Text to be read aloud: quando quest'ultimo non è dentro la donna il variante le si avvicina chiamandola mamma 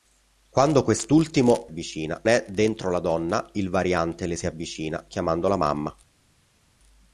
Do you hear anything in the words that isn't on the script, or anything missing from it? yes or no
yes